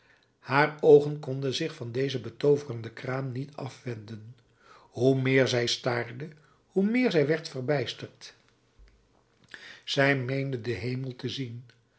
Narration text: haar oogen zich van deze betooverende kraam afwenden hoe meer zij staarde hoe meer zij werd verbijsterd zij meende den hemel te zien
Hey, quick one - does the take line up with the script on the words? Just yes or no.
no